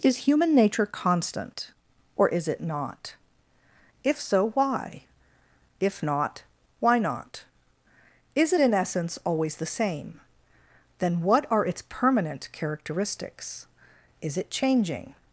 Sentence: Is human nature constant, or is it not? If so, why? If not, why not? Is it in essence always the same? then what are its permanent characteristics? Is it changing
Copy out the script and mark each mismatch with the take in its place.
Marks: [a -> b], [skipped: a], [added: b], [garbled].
Is human nature constant, or is it not? If so, why? If not, why not? Is it in essence always the same? then what are its permanent characteristics? Is it changing